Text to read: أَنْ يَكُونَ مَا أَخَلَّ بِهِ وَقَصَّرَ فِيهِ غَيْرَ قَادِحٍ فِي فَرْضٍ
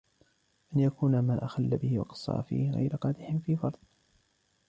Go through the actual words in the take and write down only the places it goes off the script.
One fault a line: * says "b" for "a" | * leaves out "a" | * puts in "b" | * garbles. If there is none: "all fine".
all fine